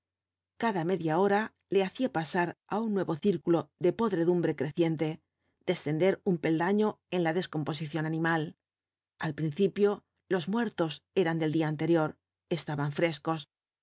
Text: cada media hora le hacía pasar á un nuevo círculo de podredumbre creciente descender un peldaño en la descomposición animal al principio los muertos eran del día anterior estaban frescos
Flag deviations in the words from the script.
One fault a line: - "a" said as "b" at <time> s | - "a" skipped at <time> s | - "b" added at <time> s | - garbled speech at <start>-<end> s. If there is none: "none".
none